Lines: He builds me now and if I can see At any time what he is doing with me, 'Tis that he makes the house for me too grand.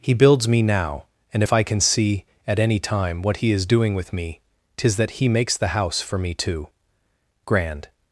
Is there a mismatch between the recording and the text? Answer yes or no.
no